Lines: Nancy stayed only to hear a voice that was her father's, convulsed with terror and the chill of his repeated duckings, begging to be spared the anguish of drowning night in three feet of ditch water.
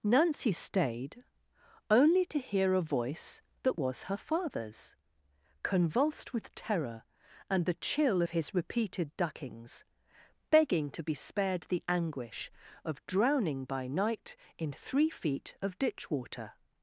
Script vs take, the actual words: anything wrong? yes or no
yes